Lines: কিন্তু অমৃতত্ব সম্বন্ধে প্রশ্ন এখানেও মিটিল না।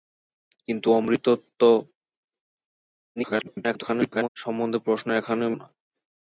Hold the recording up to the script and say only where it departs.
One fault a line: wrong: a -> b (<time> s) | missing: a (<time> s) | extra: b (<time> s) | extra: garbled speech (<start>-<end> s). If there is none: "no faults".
extra: garbled speech (3.2-4.3 s)
missing: মিটিল (5.5 s)